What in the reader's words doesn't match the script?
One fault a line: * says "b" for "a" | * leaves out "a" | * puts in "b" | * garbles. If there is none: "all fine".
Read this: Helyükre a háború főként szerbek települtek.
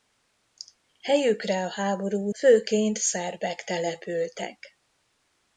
all fine